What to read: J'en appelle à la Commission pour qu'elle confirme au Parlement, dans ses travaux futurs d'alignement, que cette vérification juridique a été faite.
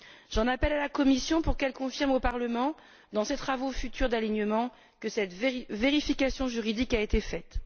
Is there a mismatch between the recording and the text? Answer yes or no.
no